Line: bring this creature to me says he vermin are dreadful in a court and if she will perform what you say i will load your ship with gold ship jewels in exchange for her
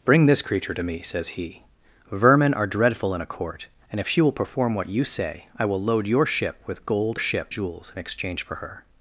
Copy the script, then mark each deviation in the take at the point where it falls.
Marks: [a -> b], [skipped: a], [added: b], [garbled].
bring this creature to me says he vermin are dreadful in a court and if she will perform what you say i will load your ship with gold ship jewels in exchange for her